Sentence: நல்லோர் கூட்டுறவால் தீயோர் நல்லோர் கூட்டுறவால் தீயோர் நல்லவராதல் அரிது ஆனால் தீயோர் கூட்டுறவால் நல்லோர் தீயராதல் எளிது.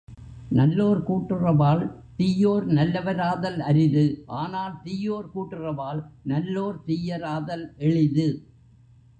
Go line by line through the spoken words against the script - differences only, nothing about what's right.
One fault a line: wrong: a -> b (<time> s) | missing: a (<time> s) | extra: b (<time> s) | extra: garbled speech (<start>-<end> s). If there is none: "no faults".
missing: நல்லோர் கூட்டுறவால் தீயோர் (2.6 s)